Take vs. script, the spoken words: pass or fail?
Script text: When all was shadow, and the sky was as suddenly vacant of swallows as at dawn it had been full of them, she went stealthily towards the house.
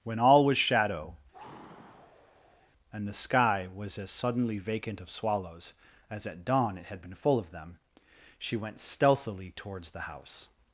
pass